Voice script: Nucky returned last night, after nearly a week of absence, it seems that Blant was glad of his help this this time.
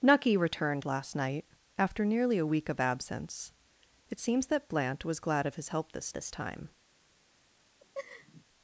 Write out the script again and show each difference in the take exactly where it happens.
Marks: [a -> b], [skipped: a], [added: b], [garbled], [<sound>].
Nucky returned last night, after nearly a week of absence, it seems that Blant was glad of his help this this time. [laugh]